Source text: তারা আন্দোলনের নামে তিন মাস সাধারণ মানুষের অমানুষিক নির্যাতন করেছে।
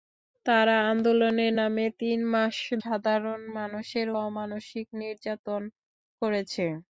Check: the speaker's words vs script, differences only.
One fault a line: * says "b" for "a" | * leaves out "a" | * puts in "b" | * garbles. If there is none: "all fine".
all fine